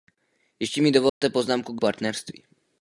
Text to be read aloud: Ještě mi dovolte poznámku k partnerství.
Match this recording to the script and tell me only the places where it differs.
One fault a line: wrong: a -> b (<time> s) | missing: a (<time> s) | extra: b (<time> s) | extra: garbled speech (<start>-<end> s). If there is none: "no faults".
no faults